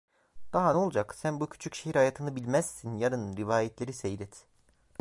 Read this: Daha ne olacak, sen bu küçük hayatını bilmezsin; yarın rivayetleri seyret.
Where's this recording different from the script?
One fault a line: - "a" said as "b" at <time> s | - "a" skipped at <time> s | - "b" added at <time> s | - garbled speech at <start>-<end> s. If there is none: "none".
- "şehir" added at 1.7 s